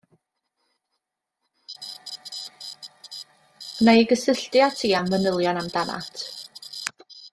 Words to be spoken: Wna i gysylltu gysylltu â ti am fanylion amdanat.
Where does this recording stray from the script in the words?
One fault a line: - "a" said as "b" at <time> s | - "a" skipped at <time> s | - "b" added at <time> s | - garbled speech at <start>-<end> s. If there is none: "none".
- "gysylltu" skipped at 4.6 s